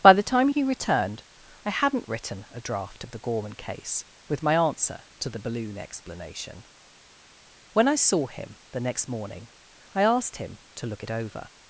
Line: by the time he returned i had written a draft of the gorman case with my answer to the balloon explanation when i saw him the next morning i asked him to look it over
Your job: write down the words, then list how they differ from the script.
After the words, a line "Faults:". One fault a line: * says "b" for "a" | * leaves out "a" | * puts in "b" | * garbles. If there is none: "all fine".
by the time he returned i hadn't written a draft of the gorman case with my answer to the balloon explanation when i saw him the next morning i asked him to look it over
Faults:
* says "hadn't" for "had"